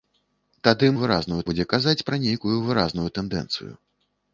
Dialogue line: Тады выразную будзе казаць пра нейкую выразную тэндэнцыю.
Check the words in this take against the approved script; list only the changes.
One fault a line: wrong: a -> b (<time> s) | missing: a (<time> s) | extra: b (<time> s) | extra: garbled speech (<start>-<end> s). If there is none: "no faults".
no faults